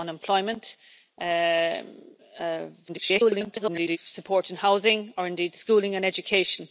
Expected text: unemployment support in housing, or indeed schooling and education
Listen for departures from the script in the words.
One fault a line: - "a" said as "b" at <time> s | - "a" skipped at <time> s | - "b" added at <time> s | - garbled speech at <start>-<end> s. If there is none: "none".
- garbled speech at 2.9-4.0 s